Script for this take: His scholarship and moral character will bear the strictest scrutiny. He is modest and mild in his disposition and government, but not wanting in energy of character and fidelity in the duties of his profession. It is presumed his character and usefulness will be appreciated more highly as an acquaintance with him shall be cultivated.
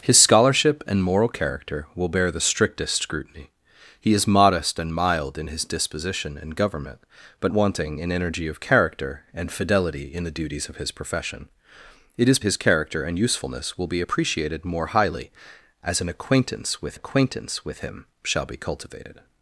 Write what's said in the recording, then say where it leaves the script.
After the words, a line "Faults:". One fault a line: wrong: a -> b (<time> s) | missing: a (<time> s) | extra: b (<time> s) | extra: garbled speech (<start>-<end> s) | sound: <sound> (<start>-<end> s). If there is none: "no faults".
His scholarship and moral character will bear the strictest scrutiny. He is modest and mild in his disposition and government, but wanting in energy of character and fidelity in the duties of his profession. It is his character and usefulness will be appreciated more highly as an acquaintance with acquaintance with him shall be cultivated.
Faults:
missing: not (7.5 s)
missing: presumed (12.4 s)
extra: acquaintance with (16.9 s)